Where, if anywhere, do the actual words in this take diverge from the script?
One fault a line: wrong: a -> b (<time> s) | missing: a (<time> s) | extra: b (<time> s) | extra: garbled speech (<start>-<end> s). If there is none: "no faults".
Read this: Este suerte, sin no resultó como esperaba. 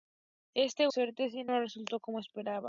no faults